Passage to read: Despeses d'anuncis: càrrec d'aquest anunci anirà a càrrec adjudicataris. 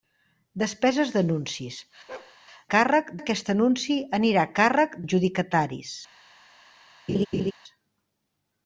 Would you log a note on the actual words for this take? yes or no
no